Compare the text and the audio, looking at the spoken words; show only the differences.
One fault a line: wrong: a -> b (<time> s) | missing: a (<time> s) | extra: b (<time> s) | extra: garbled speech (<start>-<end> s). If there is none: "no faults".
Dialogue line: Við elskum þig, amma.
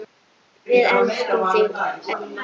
no faults